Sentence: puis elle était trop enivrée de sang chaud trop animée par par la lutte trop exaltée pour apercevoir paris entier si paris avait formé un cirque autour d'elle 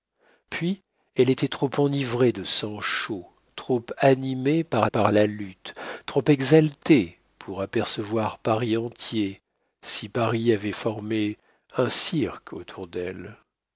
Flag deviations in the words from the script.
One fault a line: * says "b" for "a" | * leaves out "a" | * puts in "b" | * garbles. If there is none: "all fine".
all fine